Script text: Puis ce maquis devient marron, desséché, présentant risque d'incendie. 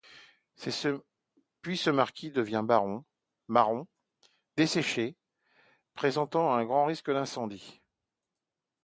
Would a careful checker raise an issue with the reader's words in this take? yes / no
yes